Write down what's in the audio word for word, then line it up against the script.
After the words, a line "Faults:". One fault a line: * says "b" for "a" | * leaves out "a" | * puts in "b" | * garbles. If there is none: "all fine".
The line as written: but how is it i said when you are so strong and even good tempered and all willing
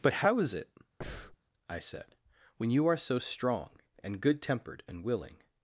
but how is it i said when you are so strong and good tempered and willing
Faults:
* leaves out "even"
* leaves out "all"